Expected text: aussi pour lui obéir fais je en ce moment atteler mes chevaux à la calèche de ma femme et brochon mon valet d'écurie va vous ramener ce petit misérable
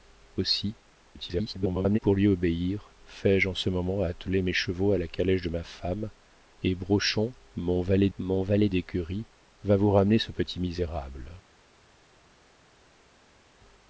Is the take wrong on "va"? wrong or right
right